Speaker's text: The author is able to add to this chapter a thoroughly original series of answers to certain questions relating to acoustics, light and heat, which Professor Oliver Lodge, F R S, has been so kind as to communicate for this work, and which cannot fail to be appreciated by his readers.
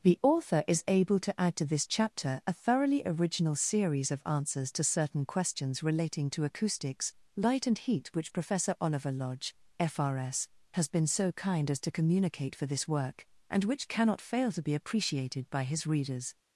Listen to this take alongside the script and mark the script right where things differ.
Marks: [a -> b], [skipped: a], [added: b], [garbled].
The author is able to add to this chapter a thoroughly original series of answers to certain questions relating to acoustics, light and heat, which Professor Oliver Lodge, F R S, has been so kind as to communicate for this work, and which cannot fail to be appreciated by his readers.